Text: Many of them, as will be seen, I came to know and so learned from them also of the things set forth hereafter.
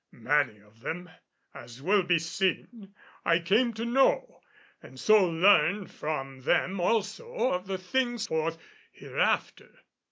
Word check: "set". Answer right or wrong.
wrong